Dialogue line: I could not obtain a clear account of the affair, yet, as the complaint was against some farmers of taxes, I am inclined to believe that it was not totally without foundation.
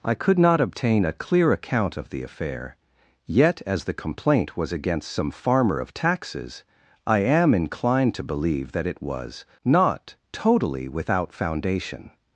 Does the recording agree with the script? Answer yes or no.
no